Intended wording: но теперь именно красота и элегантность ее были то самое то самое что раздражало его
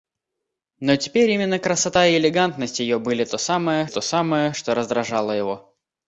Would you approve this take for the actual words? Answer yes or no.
yes